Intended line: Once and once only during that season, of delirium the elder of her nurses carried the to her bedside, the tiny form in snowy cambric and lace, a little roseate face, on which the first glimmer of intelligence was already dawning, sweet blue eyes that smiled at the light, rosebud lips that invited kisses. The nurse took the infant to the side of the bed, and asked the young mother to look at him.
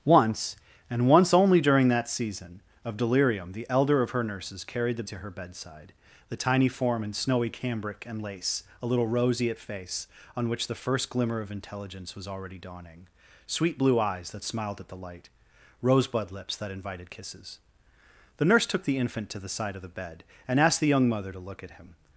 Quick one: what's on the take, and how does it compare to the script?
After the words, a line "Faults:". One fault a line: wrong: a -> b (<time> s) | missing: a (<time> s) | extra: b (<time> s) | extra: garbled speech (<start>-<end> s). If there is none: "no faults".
Once and once only during that season, of delirium the elder of her nurses carried the to her bedside, the tiny form in snowy cambric and lace, a little roseate face, on which the first glimmer of intelligence was already dawning, sweet blue eyes that smiled at the light, rosebud lips that invited kisses. The nurse took the infant to the side of the bed, and asked the young mother to look at him.
Faults:
no faults